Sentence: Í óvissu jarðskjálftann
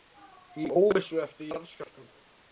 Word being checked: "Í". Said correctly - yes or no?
yes